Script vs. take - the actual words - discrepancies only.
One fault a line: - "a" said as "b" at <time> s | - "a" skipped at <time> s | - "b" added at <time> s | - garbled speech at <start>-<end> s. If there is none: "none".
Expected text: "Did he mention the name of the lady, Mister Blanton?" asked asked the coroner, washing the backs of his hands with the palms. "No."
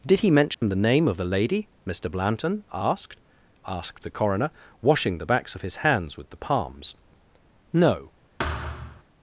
none